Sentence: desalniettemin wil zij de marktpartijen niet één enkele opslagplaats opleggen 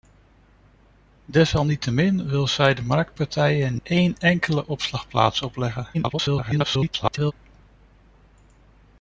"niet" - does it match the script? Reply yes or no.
no